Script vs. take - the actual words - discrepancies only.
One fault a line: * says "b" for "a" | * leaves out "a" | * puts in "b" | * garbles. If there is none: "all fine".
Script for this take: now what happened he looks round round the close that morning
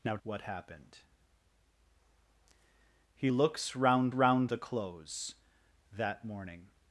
all fine